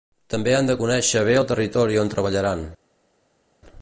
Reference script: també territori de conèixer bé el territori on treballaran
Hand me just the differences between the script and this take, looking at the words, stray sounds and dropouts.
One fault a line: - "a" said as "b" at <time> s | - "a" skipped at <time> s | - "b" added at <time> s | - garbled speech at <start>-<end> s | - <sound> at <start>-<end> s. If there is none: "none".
- "territori" said as "han" at 0.6 s